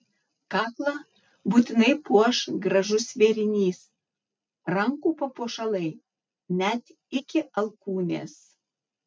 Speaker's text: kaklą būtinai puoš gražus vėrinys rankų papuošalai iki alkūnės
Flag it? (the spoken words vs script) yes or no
yes